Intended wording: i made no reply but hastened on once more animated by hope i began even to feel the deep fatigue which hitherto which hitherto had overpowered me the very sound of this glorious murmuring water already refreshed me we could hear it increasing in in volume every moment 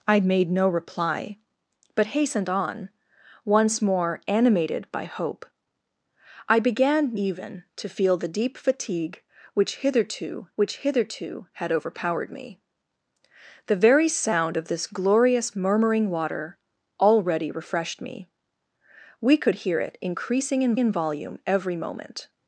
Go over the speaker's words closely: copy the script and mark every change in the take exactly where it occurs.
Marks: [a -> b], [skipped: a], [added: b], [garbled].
i made no reply but hastened on once more animated by hope i began even to feel the deep fatigue which hitherto which hitherto had overpowered me the very sound of this glorious murmuring water already refreshed me we could hear it increasing in in volume every moment